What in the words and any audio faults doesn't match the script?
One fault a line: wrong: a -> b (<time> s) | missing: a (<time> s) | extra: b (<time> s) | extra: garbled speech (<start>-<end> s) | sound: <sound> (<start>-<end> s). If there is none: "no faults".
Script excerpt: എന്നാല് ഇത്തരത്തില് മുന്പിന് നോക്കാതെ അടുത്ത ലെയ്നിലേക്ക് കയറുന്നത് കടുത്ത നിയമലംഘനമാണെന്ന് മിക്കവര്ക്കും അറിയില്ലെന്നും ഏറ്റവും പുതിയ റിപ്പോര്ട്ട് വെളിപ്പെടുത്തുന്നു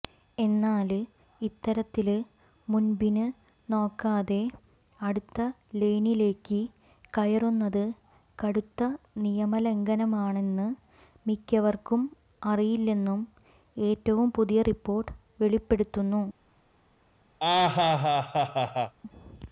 sound: laugh (17.4-18.9 s)